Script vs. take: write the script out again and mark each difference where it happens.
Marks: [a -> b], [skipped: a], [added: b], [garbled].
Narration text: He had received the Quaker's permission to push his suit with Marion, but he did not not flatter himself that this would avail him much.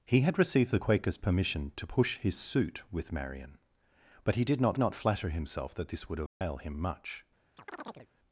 He had received the Quaker's permission to push his suit with Marion, but he did not not flatter himself that this would avail him much.